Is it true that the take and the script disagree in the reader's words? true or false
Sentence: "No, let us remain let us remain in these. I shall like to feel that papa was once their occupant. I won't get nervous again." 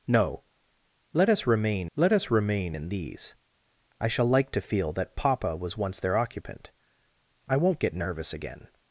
false